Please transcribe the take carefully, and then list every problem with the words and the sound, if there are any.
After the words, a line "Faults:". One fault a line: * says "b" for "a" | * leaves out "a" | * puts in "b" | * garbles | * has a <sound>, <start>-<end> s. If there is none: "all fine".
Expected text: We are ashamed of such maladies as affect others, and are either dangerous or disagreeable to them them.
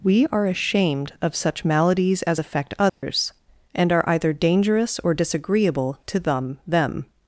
We are ashamed of such maladies as affect others, and are either dangerous or disagreeable to them them.
Faults:
* has a dropout, 2.9-3.0 s